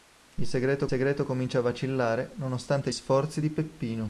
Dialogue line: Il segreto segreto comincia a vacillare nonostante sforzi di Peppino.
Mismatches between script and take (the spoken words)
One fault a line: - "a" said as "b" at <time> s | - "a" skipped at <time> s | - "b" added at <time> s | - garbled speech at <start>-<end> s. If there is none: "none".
none